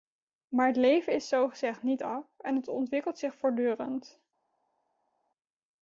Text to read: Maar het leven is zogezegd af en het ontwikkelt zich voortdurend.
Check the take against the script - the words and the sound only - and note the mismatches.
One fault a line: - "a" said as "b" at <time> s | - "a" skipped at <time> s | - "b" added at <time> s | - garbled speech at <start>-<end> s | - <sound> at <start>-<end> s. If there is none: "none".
- "niet" added at 1.8 s